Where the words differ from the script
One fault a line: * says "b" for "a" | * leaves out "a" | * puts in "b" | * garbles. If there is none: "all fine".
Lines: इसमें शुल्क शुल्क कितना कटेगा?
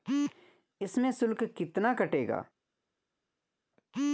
* leaves out "शुल्क"